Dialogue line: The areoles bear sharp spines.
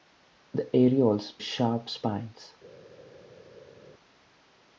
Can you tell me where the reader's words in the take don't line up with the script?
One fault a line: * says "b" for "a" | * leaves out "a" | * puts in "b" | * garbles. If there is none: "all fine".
* leaves out "bear"